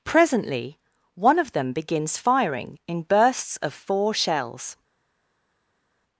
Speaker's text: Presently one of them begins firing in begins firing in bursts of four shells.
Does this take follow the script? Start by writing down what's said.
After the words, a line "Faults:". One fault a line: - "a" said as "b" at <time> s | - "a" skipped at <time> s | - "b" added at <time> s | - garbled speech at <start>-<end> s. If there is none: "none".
Presently one of them begins firing in bursts of four shells.
Faults:
- "begins firing in" skipped at 3.0 s